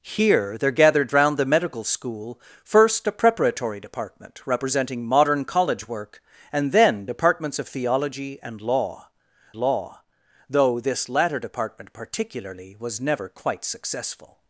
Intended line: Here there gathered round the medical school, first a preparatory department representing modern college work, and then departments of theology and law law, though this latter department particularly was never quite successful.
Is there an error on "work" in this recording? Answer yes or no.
no